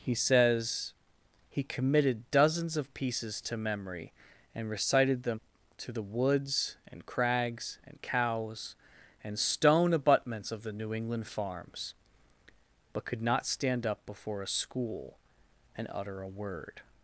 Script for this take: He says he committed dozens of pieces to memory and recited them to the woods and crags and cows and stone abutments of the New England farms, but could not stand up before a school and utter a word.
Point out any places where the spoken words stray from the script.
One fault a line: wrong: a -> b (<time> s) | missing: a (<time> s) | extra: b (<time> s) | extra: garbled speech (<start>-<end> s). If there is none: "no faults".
no faults